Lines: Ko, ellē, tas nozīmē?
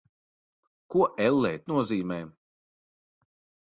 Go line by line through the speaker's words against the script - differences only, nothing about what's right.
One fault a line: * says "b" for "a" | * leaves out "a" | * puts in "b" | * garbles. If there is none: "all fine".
* leaves out "tas"